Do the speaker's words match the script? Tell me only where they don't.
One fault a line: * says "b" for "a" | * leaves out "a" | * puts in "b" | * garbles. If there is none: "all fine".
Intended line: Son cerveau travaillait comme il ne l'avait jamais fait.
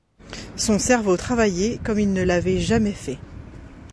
all fine